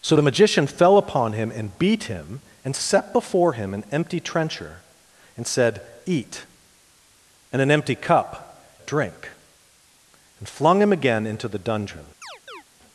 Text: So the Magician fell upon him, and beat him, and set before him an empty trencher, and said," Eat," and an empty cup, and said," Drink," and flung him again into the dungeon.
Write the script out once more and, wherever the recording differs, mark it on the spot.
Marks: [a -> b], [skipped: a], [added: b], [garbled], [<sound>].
So the Magician fell upon him, and beat him, and set before him an empty trencher, and said," Eat," and an empty cup, [skipped: and said,"] Drink," and flung him again into the dungeon. [chirp]